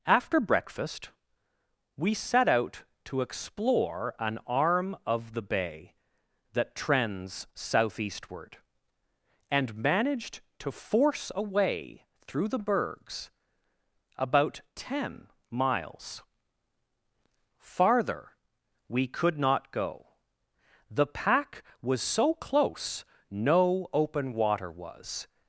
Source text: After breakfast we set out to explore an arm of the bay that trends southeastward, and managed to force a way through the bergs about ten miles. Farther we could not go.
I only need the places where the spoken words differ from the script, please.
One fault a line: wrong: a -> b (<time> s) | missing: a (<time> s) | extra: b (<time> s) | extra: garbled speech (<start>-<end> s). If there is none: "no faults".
extra: The pack was so close no open water was (20.9 s)